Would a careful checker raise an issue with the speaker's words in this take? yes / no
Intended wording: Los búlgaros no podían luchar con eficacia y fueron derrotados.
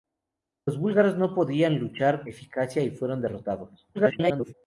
yes